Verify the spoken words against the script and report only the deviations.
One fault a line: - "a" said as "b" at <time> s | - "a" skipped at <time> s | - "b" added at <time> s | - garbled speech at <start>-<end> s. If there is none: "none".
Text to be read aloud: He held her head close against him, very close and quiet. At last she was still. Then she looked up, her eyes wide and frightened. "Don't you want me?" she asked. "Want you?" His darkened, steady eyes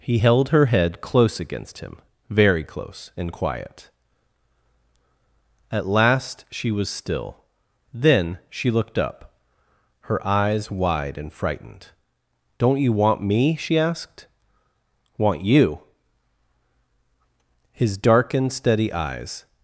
none